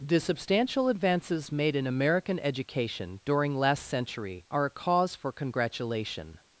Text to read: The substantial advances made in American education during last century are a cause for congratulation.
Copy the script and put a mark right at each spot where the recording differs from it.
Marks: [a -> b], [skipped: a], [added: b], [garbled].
The substantial advances made in American education during last century are a cause for congratulation.